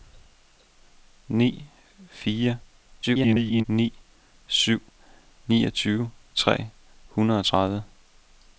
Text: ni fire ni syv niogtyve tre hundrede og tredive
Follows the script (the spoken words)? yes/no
no